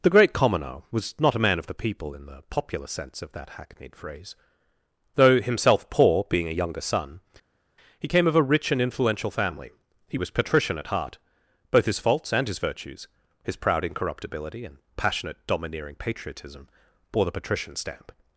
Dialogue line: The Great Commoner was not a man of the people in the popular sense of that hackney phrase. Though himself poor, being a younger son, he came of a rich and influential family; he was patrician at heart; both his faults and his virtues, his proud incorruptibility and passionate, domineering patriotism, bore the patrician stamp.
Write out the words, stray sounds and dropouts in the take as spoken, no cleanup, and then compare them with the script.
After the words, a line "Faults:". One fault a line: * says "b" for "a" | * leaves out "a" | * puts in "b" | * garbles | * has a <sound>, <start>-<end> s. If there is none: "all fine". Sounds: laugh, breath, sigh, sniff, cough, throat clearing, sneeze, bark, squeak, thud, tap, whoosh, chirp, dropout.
The Great Commoner was not a man of the people in the popular sense of that hackneyed phrase. Though himself poor, being a younger son, he came of a rich and influential family; he was patrician at heart; both his faults and his virtues, his proud incorruptibility and passionate, domineering patriotism, bore the patrician stamp.
Faults:
* says "hackneyed" for "hackney"